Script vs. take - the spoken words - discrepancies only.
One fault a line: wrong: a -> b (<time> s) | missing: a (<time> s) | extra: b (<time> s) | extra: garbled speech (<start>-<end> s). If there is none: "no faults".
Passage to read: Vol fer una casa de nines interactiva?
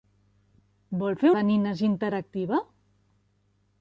missing: una casa (1.3 s)